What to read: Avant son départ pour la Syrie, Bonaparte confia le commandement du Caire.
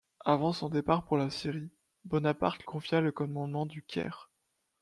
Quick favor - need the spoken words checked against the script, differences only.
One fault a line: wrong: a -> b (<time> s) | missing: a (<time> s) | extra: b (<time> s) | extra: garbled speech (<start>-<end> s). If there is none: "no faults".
no faults